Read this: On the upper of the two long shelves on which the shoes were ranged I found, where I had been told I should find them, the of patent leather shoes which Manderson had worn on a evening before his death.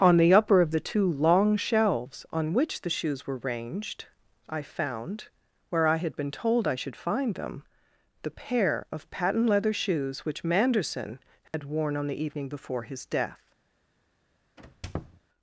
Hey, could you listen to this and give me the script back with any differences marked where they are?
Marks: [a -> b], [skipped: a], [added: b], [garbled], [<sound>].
On the upper of the two long shelves on which the shoes were ranged I found, where I had been told I should find them, the [added: pair] of patent leather shoes which Manderson had [dropout] worn on [a -> the] evening before his death. [squeak]